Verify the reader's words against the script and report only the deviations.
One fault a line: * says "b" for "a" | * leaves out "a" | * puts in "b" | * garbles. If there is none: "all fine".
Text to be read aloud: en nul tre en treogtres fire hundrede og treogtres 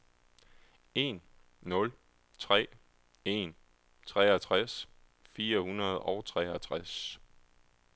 all fine